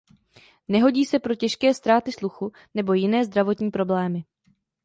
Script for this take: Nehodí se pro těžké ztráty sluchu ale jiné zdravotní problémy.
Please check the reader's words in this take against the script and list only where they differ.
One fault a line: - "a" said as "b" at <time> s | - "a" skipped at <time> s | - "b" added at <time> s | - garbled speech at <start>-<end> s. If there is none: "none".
- "ale" said as "nebo" at 2.7 s